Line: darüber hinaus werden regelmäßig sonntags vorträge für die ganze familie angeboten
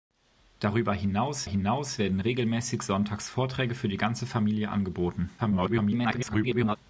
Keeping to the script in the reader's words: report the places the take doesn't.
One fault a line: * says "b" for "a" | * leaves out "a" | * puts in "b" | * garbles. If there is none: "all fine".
* puts in "hinaus"
* garbles